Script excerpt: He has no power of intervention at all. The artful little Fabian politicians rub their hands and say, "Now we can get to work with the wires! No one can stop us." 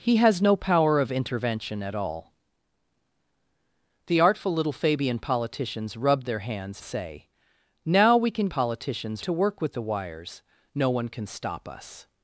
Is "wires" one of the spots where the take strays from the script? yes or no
no